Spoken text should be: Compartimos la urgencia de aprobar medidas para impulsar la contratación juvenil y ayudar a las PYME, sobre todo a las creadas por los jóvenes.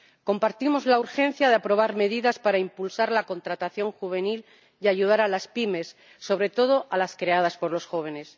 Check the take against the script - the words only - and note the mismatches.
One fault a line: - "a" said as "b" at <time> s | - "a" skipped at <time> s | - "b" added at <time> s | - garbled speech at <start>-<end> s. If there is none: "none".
none